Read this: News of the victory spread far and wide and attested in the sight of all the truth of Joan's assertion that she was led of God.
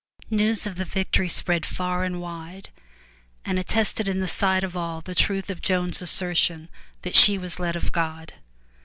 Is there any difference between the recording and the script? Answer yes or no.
no